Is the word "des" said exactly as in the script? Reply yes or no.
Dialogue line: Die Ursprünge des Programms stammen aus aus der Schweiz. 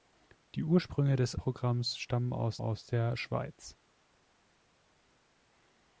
yes